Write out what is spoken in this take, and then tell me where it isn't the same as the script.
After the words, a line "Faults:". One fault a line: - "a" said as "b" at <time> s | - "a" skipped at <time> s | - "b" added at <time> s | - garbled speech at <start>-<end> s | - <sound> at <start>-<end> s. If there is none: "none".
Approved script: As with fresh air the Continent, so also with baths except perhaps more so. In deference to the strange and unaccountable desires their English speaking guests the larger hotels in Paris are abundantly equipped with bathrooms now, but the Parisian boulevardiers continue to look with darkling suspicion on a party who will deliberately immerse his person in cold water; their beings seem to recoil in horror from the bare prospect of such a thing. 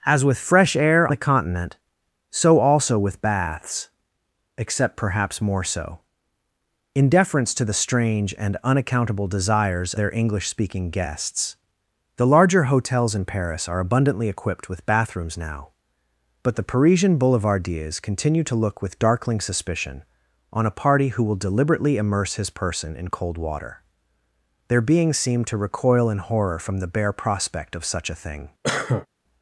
As with fresh air the Continent, so also with baths except perhaps more so. In deference to the strange and unaccountable desires their English speaking guests the larger hotels in Paris are abundantly equipped with bathrooms now, but the Parisian boulevardiers continue to look with darkling suspicion on a party who will deliberately immerse his person in cold water; their beings seem to recoil in horror from the bare prospect of such a thing.
Faults:
- cough at 28.6-29.1 s